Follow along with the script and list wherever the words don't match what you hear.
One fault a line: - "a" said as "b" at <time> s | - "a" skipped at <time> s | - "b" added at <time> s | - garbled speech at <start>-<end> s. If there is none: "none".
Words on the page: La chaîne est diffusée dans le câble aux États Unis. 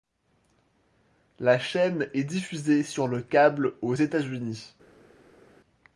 - "dans" said as "sur" at 2.8 s